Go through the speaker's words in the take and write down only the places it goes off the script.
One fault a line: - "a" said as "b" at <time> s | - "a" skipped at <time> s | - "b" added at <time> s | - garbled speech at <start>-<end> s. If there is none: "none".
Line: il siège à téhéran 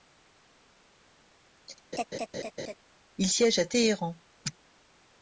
none